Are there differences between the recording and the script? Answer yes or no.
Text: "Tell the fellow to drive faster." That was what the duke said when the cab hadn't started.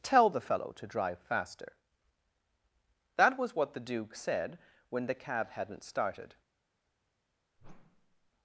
no